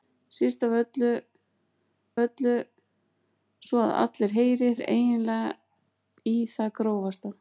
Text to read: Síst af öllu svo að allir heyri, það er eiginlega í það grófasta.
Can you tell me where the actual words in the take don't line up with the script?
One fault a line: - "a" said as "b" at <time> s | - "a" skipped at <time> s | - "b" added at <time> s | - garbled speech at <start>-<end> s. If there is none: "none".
- "öllu" added at 2.2 s
- "það" skipped at 4.7 s